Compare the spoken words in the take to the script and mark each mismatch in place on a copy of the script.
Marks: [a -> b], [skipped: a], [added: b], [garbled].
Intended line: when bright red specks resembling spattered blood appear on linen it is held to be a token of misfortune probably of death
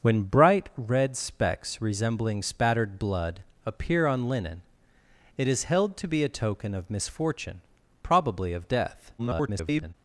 when bright red specks resembling spattered blood appear on linen it is held to be a token of misfortune probably of death [garbled]